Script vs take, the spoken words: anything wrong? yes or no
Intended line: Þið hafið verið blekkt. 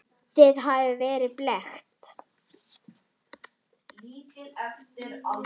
no